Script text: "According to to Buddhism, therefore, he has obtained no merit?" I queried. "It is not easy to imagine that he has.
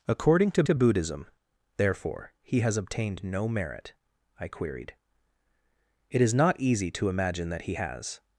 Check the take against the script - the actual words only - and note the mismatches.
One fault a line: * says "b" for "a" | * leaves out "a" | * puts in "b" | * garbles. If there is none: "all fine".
all fine